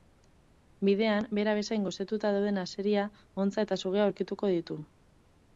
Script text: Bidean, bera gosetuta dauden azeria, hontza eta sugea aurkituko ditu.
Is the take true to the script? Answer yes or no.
no